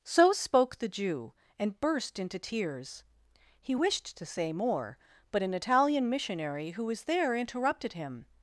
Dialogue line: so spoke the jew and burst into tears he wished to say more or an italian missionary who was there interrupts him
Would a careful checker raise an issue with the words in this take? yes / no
yes